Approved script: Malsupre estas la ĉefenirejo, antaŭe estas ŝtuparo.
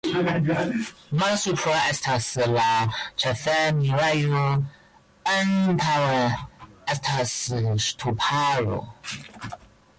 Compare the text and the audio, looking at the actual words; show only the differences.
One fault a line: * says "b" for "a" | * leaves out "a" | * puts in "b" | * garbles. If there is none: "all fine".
all fine